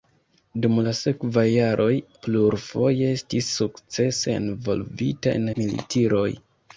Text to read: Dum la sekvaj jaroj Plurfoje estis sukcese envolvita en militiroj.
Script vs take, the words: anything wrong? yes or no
no